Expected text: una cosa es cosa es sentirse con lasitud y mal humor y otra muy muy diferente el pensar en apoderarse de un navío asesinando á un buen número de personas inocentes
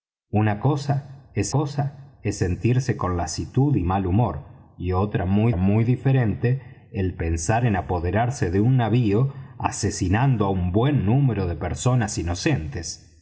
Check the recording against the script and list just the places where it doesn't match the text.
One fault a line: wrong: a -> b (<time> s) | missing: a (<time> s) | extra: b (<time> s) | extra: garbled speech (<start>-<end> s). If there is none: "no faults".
no faults